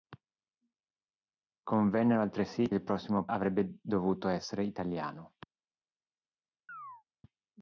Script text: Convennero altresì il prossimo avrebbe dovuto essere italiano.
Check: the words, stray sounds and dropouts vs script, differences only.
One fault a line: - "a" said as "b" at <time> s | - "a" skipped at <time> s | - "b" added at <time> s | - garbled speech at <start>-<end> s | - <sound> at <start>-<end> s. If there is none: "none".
- chirp at 6.7-7.0 s